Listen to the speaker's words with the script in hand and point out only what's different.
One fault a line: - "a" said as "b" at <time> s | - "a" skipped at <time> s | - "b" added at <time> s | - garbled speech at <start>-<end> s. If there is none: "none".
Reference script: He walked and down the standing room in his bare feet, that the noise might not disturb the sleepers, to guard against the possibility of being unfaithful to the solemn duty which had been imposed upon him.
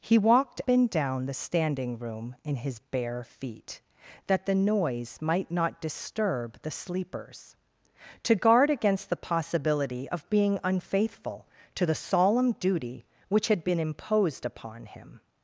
none